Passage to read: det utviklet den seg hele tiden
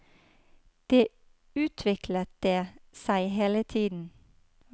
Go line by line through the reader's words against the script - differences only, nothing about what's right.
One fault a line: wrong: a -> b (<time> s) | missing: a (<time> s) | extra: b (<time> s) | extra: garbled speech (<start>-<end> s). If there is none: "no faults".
wrong: den -> det (2.4 s)